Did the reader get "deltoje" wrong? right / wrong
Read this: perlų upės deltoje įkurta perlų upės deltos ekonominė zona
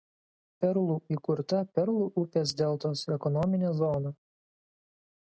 wrong